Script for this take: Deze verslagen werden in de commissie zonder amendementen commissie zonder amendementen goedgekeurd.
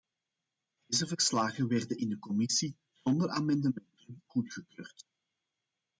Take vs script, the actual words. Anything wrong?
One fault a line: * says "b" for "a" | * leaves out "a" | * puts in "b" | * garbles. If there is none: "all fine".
* leaves out "commissie zonder amendementen"